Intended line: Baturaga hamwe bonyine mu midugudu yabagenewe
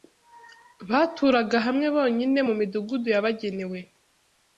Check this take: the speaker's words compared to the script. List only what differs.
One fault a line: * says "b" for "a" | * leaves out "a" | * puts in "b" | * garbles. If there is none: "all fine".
all fine